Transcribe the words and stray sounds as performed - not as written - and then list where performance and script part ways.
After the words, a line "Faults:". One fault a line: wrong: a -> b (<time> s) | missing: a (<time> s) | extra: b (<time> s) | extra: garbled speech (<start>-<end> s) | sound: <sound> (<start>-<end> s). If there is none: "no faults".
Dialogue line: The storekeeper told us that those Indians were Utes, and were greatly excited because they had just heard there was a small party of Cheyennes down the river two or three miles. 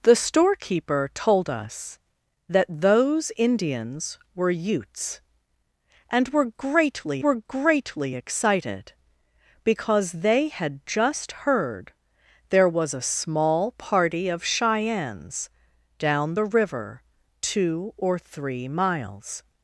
The storekeeper told us that those Indians were Utes, and were greatly were greatly excited because they had just heard there was a small party of Cheyennes down the river two or three miles.
Faults:
extra: were greatly (7.2 s)